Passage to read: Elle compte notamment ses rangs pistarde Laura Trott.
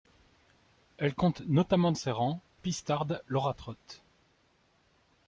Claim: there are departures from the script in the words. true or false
false